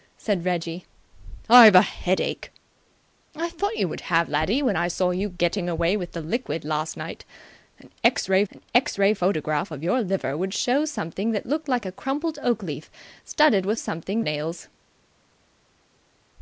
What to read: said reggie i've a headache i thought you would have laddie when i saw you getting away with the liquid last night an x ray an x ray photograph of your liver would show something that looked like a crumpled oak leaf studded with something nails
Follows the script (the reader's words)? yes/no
yes